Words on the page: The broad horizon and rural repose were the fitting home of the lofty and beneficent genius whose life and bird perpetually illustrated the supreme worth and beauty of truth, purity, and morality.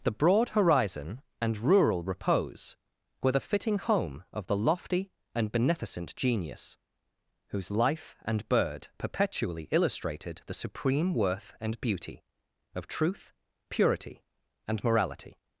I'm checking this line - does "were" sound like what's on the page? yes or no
yes